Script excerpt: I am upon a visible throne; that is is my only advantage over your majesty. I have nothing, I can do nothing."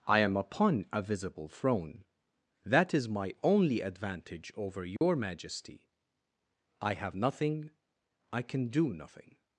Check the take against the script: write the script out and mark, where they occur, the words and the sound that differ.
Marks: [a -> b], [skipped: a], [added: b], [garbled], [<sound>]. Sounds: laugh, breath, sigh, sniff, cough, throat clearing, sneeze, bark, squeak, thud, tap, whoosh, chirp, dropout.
I am upon a visible throne; that is [skipped: is] my only advantage over your [dropout] majesty. I have nothing, I can do nothing."